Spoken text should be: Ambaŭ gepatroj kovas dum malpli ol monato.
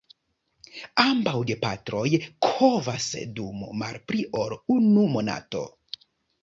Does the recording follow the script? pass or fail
fail